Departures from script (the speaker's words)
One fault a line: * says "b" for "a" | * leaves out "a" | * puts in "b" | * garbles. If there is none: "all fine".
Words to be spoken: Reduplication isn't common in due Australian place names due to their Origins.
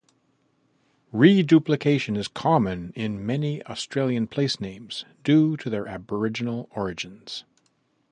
* says "is" for "isn't"
* says "many" for "due"
* puts in "Aboriginal"